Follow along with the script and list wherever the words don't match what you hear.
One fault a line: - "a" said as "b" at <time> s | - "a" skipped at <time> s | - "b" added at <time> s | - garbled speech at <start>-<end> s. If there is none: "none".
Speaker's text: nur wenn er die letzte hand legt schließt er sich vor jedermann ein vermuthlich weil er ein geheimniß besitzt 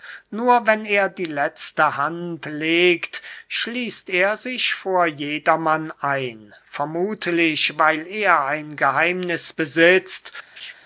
none